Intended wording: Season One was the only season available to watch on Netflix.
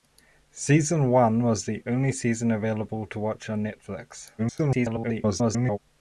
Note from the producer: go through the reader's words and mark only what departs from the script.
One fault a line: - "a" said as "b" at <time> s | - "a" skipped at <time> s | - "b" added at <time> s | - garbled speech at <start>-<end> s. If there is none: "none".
- garbled speech at 4.4-5.8 s